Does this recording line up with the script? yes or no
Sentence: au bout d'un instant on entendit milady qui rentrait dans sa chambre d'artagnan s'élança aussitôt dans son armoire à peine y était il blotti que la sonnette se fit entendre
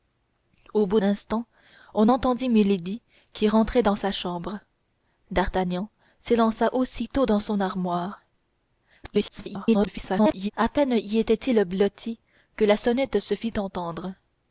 no